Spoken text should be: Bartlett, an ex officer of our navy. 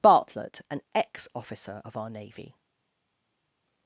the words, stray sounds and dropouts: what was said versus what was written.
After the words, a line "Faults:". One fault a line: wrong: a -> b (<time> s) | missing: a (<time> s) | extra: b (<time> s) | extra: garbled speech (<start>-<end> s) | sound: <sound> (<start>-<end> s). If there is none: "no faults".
Bartlett, an ex officer of our navy.
Faults:
no faults